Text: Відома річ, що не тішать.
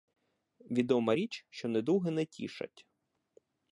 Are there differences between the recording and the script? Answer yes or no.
yes